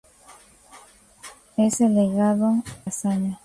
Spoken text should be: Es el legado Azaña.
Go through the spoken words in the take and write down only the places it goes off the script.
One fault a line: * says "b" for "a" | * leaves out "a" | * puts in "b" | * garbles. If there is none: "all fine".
all fine